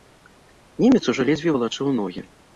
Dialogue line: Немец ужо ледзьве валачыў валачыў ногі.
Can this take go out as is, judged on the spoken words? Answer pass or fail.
fail